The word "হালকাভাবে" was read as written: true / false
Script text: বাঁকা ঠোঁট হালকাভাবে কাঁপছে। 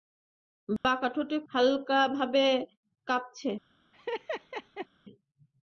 true